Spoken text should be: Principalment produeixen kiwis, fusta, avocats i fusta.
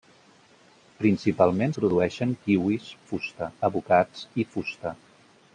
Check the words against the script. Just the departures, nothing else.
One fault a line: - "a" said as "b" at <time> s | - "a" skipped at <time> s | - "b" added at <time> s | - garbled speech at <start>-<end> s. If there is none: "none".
none